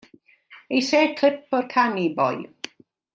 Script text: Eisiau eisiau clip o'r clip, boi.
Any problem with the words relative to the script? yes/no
yes